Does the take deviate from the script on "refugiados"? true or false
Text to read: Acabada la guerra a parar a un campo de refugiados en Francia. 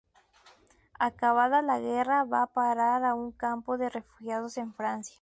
false